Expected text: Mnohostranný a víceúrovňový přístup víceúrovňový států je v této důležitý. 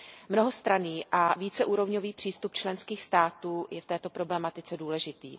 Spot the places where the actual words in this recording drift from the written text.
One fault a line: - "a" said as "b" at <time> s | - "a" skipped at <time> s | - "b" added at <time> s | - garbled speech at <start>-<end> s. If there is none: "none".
- "víceúrovňový" said as "členských" at 2.5 s
- "problematice" added at 4.1 s